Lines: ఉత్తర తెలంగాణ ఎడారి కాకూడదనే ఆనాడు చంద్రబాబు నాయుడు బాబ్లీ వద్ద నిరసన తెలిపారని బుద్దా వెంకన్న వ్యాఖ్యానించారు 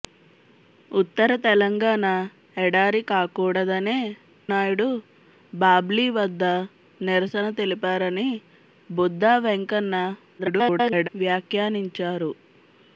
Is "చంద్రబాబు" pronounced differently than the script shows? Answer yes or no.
yes